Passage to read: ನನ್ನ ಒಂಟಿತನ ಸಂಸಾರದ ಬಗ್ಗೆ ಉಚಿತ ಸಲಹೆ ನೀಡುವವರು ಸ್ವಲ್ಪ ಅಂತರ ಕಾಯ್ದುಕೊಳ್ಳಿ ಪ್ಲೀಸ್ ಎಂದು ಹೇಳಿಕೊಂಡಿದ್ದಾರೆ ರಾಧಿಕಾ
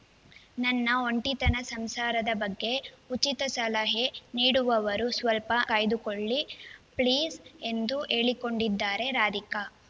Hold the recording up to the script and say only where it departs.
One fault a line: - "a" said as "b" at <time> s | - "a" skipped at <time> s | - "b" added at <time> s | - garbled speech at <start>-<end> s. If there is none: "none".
- "ಅಂತರ" skipped at 5.5 s